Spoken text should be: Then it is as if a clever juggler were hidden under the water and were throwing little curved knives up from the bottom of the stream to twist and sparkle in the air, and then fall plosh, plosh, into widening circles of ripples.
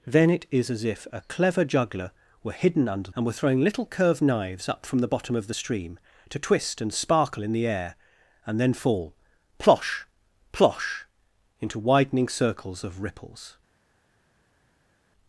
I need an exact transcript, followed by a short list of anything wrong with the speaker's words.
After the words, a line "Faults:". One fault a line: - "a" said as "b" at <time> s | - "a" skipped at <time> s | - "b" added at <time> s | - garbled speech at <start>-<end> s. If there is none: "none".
Then it is as if a clever juggler were hidden under and were throwing little curved knives up from the bottom of the stream to twist and sparkle in the air, and then fall plosh, plosh, into widening circles of ripples.
Faults:
- "the water" skipped at 3.1 s